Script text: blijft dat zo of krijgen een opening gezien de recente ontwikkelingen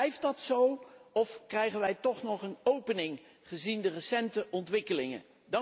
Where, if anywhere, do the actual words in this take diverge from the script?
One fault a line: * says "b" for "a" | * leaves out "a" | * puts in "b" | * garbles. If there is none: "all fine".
* puts in "wij toch nog"